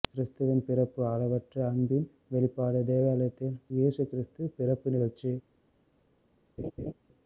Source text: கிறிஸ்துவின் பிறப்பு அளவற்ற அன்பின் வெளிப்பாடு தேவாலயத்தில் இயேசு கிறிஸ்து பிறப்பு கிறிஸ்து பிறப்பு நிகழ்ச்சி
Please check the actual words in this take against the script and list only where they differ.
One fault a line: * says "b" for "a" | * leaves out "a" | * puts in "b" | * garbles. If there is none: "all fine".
* leaves out "கிறிஸ்து பிறப்பு"